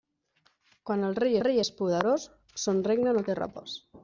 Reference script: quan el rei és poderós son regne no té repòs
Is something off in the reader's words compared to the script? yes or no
yes